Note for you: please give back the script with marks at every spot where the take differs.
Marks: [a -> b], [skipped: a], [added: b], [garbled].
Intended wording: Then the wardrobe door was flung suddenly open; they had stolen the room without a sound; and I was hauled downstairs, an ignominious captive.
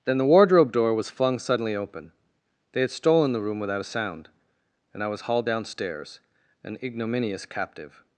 Then the wardrobe door was flung suddenly open; they had stolen the room without a sound; and I was hauled downstairs, an ignominious captive.